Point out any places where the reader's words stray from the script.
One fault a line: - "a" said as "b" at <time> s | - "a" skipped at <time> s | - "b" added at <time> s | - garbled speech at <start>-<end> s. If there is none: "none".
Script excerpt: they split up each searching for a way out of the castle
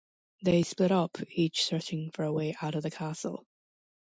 none